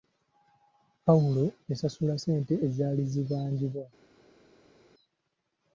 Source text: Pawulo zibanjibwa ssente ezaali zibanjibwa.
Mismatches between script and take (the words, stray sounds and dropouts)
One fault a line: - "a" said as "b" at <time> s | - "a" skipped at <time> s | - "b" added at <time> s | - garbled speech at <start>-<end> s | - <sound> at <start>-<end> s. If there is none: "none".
- "zibanjibwa" said as "yasasula" at 1.7 s